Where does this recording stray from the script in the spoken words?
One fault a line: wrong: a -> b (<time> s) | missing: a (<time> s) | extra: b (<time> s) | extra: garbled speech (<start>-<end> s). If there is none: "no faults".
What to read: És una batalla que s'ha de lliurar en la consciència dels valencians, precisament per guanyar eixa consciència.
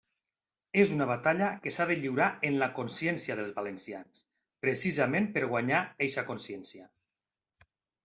no faults